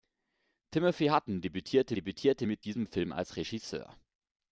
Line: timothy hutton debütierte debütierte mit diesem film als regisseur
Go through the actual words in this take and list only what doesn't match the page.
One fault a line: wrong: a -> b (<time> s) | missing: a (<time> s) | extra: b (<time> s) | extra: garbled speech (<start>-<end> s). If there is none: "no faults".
no faults